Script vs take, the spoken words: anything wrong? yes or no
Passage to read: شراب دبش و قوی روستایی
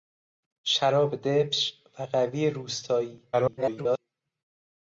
yes